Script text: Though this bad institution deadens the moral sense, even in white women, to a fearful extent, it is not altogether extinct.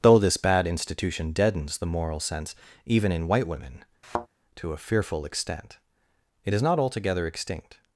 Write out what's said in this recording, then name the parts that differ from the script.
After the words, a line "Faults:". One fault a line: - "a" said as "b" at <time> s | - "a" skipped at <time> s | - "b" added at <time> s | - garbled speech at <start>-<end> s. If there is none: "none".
Though this bad institution deadens the moral sense, even in white women, to a fearful extent, it is not altogether extinct.
Faults:
none